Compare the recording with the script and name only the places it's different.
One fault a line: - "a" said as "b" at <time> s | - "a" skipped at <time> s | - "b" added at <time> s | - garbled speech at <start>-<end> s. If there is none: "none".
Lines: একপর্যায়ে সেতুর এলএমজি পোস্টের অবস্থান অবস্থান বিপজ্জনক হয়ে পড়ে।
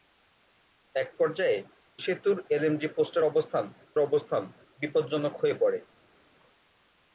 none